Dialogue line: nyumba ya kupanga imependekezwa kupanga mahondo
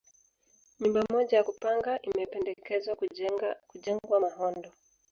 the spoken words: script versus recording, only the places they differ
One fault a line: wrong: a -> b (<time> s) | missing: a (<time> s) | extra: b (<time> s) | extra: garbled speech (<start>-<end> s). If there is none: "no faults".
extra: moja (1.1 s)
wrong: kupanga -> kujengwa (3.7 s)